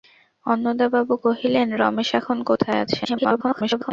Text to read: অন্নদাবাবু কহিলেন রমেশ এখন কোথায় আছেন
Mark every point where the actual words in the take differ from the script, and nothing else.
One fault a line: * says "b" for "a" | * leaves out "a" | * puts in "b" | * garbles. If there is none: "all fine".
* garbles